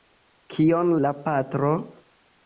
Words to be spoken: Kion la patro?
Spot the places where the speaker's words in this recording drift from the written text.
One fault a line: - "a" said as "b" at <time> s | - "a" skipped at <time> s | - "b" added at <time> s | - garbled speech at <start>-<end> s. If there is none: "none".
none